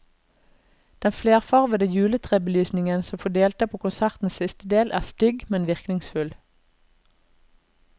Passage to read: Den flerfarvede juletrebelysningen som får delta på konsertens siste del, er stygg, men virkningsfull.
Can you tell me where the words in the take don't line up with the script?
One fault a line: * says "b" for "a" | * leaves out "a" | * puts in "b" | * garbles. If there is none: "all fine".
all fine